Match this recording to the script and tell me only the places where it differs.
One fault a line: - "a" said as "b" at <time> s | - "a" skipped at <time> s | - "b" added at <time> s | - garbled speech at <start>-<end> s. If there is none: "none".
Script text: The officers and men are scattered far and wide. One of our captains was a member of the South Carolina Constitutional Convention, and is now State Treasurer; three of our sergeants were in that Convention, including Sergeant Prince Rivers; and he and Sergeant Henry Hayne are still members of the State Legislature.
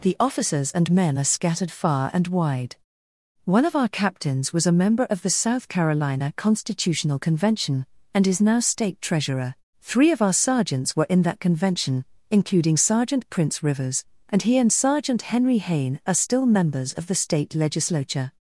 none